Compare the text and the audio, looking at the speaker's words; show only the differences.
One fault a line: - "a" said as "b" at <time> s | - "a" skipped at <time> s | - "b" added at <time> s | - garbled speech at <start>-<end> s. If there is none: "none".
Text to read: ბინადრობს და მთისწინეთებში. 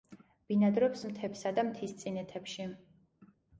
- "მთებსა" added at 1.1 s